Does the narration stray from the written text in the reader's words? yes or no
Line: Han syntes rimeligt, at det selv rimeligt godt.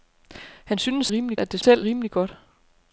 no